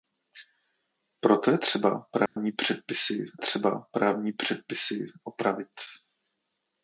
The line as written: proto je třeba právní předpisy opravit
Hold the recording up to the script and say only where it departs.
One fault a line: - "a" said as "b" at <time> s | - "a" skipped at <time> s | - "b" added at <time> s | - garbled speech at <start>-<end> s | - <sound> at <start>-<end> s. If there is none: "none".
- dropout at 2.3-2.4 s
- "třeba právní předpisy" added at 3.3 s